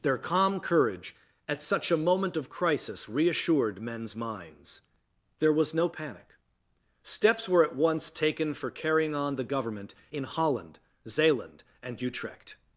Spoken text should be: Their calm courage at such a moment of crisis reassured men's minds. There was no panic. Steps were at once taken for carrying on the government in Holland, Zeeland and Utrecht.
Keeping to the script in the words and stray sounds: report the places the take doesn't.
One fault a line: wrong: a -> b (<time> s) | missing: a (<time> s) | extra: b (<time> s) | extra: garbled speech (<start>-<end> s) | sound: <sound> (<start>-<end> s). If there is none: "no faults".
no faults